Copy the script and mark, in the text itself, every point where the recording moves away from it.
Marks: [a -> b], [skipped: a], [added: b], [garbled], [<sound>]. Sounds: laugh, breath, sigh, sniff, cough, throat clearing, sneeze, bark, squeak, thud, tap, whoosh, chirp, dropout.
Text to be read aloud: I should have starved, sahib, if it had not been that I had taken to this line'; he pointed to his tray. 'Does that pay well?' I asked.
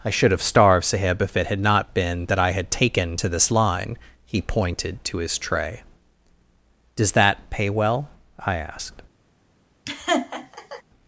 I should have starved, sahib, if it had not been that I had taken to this line'; he pointed to his tray. 'Does that pay well?' I asked. [laugh]